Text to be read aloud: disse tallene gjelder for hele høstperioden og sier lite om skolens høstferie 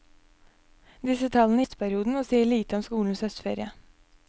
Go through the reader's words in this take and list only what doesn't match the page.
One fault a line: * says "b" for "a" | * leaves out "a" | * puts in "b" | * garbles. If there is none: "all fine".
* leaves out "gjelder for hele"